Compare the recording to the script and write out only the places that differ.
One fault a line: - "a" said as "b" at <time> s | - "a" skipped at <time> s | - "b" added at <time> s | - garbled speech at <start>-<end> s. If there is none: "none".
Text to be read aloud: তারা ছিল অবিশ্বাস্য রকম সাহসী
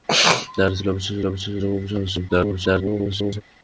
- "অবিশ্বাস্য" added at 1.3 s
- garbled speech at 2.3-3.4 s